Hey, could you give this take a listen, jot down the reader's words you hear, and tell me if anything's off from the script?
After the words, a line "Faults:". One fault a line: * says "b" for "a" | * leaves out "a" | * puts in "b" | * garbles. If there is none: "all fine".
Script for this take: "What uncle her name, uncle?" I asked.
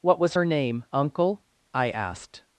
"What was her name, uncle?" I asked.
Faults:
* says "was" for "uncle"